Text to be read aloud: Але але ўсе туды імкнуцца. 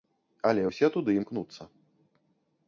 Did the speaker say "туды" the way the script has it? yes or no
yes